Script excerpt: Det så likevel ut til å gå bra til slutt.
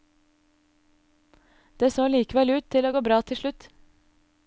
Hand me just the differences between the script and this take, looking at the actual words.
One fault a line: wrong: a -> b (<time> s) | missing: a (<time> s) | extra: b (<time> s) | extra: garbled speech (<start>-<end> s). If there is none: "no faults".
no faults